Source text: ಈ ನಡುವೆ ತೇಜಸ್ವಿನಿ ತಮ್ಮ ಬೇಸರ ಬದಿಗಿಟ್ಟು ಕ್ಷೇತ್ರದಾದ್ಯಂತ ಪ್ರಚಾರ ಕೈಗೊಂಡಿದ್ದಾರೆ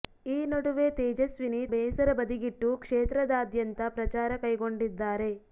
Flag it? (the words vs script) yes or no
yes